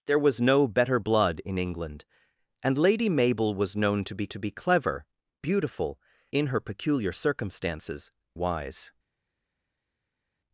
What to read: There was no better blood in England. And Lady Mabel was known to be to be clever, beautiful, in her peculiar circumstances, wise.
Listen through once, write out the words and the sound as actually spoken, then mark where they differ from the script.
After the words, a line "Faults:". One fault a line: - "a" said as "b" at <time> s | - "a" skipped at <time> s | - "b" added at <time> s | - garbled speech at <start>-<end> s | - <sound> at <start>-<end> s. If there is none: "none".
There was no better blood in England. And Lady Mabel was known to be to be clever, beautiful, in her peculiar circumstances, wise.
Faults:
none